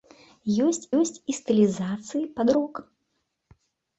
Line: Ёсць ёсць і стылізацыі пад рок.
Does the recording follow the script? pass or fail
pass